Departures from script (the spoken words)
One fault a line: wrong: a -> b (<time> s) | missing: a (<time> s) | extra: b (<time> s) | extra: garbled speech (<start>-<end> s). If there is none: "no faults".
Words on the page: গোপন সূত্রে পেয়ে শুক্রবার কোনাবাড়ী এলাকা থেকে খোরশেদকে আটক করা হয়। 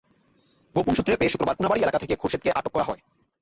no faults